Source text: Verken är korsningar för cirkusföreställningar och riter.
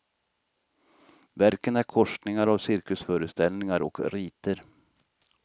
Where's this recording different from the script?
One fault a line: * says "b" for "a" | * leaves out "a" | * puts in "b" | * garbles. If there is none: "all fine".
* says "av" for "för"